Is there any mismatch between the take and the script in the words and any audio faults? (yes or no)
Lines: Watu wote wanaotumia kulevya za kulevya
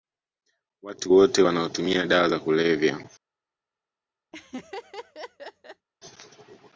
yes